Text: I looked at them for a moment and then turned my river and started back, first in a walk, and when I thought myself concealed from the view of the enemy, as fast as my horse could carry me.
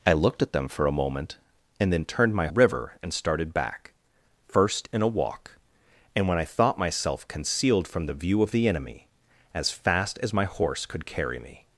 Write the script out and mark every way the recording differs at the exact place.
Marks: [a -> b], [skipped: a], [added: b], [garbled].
I looked at them for a moment and then turned my river and started back, first in a walk, and when I thought myself concealed from the view of the enemy, as fast as my horse could carry me.